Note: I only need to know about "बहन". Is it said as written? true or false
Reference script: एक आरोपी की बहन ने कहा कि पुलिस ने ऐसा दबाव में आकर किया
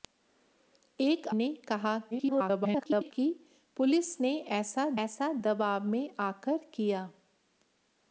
false